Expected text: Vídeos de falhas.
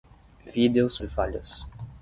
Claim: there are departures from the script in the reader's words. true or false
false